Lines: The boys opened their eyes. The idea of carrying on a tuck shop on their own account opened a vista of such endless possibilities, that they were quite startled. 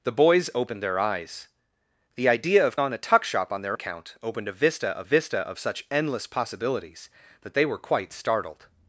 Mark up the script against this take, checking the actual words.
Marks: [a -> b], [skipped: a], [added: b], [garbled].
The boys opened their eyes. The idea of [skipped: carrying] on a tuck shop on their [skipped: own] account opened a vista of [added: vista of] such endless possibilities, that they were quite startled.